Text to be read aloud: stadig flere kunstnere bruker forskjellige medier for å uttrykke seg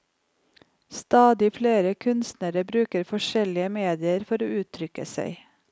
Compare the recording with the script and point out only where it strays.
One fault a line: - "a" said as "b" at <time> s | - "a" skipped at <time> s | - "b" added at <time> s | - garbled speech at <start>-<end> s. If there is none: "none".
none